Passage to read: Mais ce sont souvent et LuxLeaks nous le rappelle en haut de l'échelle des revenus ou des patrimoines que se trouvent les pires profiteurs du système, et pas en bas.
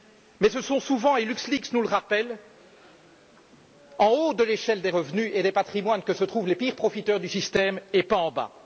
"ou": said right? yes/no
no